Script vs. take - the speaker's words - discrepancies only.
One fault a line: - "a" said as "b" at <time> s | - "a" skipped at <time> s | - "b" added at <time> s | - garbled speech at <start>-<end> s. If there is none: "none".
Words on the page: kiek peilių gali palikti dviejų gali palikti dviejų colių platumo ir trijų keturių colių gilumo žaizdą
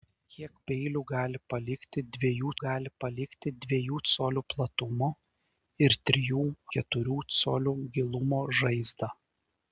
none